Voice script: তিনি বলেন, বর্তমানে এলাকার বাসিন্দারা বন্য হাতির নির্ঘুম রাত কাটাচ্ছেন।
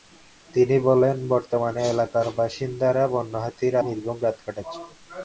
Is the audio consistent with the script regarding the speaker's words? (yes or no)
yes